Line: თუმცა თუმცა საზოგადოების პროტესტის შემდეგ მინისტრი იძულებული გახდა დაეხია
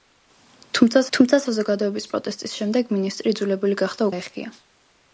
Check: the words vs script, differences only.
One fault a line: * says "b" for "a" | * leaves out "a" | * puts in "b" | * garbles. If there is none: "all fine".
all fine